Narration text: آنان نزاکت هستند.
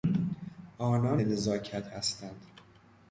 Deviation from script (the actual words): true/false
false